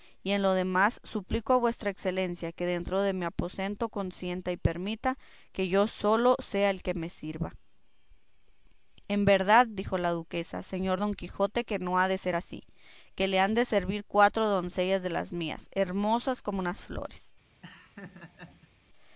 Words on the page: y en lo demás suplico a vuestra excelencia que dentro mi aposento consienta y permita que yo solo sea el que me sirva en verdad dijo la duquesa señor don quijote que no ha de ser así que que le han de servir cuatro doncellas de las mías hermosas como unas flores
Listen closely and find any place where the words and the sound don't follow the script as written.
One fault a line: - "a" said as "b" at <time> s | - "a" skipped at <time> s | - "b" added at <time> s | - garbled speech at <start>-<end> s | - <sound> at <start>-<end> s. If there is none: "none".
- "de" added at 3.0 s
- "que" skipped at 13.3 s
- laugh at 17.6-18.7 s